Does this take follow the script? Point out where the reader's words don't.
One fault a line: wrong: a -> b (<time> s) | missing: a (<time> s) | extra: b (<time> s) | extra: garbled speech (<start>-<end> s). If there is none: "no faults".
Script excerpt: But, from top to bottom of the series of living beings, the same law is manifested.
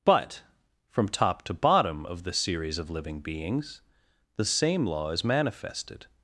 no faults